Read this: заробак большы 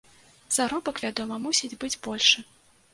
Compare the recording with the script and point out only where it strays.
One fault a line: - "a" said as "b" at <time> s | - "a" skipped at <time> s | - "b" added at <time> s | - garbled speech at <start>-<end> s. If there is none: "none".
- "вядома мусіць быць" added at 1.0 s